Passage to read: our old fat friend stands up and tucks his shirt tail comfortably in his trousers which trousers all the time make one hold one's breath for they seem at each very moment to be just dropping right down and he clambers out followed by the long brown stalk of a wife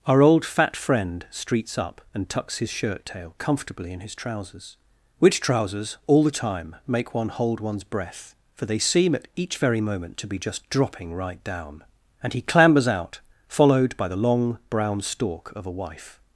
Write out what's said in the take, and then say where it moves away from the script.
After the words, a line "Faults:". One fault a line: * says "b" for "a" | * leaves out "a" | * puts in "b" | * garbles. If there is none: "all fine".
our old fat friend streets up and tucks his shirt tail comfortably in his trousers which trousers all the time make one hold one's breath for they seem at each very moment to be just dropping right down and he clambers out followed by the long brown stalk of a wife
Faults:
* says "streets" for "stands"